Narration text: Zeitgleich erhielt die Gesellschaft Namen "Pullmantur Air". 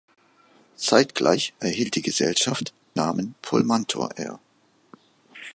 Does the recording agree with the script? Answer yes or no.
yes